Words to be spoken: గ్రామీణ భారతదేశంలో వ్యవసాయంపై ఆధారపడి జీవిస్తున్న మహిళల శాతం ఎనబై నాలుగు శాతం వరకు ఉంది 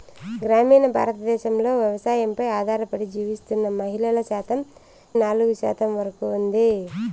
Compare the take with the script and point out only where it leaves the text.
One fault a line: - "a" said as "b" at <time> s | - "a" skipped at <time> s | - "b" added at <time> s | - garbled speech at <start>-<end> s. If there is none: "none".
- "ఎనబై" skipped at 4.6 s